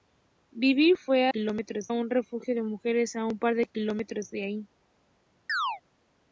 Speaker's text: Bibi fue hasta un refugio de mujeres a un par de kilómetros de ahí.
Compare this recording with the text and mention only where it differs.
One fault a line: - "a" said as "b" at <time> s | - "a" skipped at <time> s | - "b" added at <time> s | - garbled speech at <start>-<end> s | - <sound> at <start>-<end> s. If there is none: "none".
- "hasta" said as "kilómetros" at 1.2 s
- chirp at 5.5-5.8 s